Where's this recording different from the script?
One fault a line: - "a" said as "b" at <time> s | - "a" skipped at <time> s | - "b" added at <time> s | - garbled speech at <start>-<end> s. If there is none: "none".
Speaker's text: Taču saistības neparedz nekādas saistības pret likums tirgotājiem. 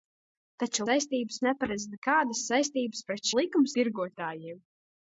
none